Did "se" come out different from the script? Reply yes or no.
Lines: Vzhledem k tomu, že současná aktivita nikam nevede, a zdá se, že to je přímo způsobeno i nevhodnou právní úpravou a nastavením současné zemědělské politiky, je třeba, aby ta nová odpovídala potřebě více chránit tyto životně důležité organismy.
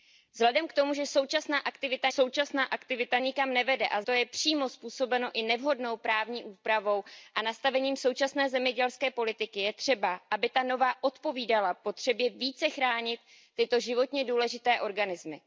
yes